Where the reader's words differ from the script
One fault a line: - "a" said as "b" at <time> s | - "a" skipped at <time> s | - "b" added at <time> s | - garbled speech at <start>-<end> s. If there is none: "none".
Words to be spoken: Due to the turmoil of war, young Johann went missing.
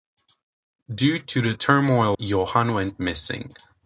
- "of war young" skipped at 2.2 s